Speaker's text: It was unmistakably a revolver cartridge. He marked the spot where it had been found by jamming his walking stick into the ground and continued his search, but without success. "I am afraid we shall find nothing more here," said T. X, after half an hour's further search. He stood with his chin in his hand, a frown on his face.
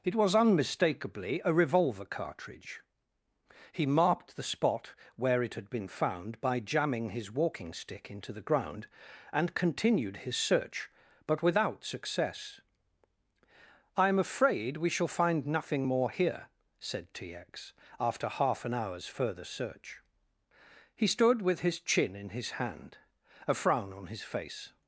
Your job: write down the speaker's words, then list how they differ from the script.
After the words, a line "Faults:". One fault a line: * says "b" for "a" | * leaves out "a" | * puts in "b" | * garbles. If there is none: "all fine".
It was unmistakably a revolver cartridge. He marked the spot where it had been found by jamming his walking stick into the ground and continued his search, but without success. "I am afraid we shall find nothing more here," said T. X, after half an hour's further search. He stood with his chin in his hand, a frown on his face.
Faults:
all fine